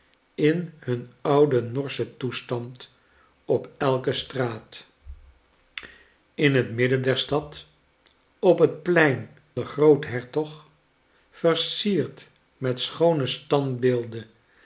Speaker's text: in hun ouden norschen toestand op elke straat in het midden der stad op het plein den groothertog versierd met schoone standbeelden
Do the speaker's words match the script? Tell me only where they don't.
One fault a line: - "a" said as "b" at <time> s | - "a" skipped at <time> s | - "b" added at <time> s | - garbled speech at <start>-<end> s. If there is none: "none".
none